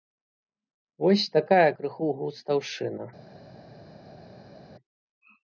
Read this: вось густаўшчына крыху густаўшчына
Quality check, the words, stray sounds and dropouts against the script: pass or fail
fail